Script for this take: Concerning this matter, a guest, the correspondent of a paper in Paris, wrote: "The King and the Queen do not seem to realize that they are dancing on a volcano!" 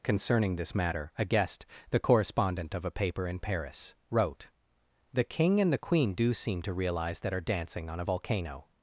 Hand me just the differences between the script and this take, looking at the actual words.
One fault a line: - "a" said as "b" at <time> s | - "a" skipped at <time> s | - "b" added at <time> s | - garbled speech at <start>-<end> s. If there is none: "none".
- "not" skipped at 6.3 s
- "they" skipped at 7.3 s